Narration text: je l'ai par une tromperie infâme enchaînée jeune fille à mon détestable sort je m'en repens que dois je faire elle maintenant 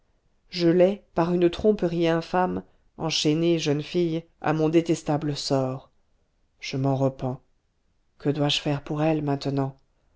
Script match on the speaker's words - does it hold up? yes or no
no